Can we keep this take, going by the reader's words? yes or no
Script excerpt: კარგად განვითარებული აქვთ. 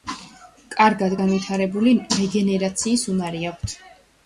no